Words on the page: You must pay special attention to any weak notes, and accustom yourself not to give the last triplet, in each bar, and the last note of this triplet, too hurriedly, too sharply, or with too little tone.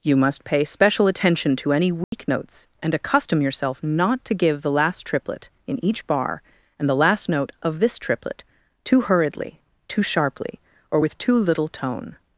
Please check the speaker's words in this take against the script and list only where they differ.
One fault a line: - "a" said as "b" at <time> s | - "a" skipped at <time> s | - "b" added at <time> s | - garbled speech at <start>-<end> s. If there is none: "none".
none